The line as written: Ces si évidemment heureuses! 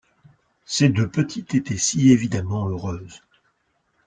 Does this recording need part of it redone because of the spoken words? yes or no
yes